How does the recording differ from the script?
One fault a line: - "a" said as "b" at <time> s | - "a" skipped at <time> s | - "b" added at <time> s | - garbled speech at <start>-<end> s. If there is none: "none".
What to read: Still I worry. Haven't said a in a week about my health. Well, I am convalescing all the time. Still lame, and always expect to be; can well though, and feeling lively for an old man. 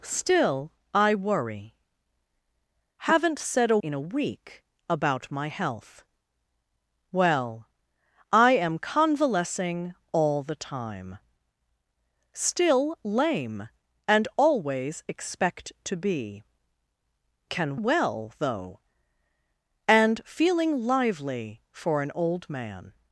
none